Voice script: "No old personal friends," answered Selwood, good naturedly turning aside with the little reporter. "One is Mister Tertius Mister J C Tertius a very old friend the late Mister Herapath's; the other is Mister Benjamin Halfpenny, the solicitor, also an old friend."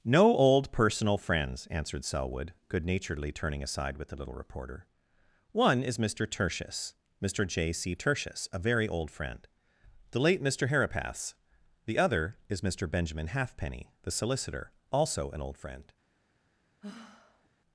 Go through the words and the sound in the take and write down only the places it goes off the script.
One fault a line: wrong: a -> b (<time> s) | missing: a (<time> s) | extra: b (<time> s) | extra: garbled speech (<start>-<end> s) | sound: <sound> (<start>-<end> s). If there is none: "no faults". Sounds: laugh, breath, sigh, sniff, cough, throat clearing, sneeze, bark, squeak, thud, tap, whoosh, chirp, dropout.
sound: sigh (16.8-17.5 s)